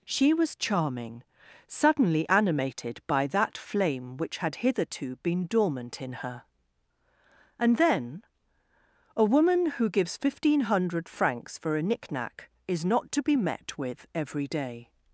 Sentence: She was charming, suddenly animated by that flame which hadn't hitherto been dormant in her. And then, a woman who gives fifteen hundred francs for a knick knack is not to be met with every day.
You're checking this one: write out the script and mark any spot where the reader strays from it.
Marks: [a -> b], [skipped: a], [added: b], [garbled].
She was charming, suddenly animated by that flame which [hadn't -> had] hitherto been dormant in her. And then, a woman who gives fifteen hundred francs for a knick knack is not to be met with every day.